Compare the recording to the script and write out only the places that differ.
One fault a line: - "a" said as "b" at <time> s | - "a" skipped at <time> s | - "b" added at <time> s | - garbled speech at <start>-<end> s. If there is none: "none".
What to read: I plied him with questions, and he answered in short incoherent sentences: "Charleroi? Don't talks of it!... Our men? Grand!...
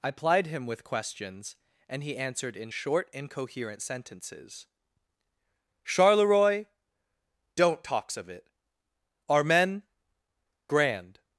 none